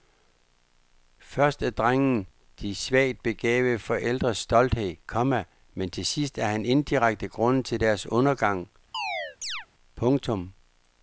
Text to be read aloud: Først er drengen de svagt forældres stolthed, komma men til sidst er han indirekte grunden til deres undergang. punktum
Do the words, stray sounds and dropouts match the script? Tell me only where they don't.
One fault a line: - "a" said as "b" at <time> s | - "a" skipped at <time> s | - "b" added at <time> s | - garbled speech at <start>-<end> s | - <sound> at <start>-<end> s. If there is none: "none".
- "begavede" added at 3.2 s
- chirp at 8.9-9.7 s